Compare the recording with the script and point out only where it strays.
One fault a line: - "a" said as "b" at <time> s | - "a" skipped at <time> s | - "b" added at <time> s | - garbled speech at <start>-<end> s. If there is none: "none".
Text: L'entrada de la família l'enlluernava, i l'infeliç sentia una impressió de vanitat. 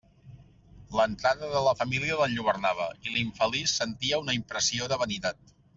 none